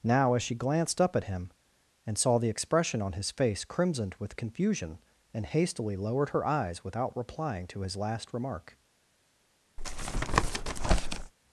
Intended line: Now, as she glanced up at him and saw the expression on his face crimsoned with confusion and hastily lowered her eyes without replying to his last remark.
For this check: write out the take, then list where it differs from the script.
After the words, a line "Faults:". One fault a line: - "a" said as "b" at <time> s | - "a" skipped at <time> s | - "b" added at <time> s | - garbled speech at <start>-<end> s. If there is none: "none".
Now, as she glanced up at him and saw the expression on his face crimsoned with confusion and hastily lowered her eyes without replying to his last remark.
Faults:
none